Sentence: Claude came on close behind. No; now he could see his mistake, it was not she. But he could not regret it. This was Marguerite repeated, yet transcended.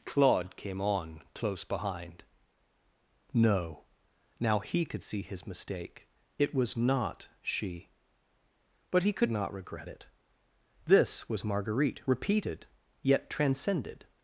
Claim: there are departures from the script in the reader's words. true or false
false